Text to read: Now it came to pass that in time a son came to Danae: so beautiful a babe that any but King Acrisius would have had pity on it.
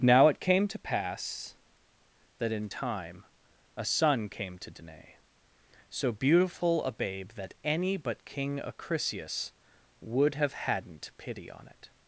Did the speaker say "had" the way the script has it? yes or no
no